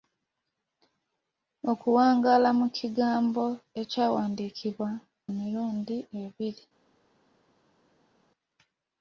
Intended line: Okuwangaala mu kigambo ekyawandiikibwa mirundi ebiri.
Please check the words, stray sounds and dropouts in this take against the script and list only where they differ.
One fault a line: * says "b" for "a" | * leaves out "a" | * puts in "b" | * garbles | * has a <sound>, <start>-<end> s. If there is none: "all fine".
all fine